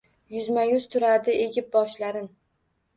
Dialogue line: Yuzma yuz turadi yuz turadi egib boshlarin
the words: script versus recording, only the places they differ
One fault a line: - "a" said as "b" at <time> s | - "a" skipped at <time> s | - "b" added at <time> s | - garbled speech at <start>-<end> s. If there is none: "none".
- "yuz turadi" skipped at 1.4 s